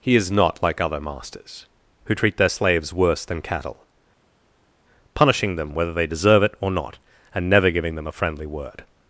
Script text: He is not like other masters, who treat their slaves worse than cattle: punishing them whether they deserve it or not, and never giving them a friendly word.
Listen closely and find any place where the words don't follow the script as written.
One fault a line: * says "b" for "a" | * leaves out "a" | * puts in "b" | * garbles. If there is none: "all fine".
all fine